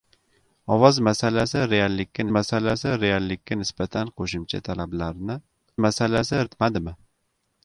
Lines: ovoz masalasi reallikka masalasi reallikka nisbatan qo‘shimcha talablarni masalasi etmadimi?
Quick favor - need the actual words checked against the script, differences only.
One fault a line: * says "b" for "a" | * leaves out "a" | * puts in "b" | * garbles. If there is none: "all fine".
all fine